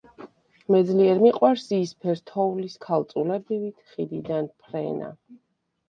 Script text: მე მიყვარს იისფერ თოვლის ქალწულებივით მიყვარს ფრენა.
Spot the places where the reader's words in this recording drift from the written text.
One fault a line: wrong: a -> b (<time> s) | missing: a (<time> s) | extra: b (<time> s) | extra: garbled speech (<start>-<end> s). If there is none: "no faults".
extra: ძლიერ (0.9 s)
wrong: მიყვარს -> ხიდიდან (3.9 s)